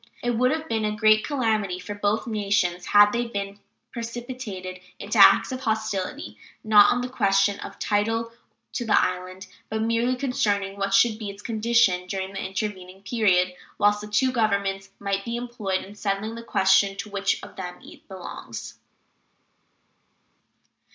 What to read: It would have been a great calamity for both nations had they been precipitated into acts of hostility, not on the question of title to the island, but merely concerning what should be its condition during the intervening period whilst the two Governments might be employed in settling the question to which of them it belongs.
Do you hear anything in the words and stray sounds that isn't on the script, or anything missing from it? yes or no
no